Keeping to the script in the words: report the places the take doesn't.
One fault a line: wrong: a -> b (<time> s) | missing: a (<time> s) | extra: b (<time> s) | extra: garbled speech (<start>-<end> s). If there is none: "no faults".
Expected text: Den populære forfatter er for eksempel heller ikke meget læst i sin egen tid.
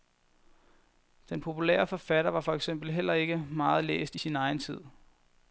wrong: er -> var (2.3 s)